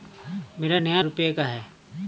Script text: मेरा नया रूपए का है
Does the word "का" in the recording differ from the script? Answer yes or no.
no